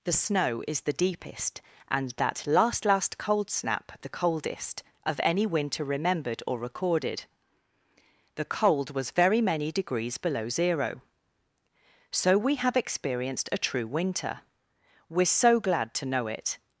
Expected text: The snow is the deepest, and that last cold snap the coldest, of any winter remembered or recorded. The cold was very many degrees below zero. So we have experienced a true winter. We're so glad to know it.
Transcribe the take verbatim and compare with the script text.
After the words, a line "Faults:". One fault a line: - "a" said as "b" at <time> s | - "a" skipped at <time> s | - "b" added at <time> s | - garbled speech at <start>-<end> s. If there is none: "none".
The snow is the deepest, and that last last cold snap the coldest, of any winter remembered or recorded. The cold was very many degrees below zero. So we have experienced a true winter. We're so glad to know it.
Faults:
- "last" added at 2.9 s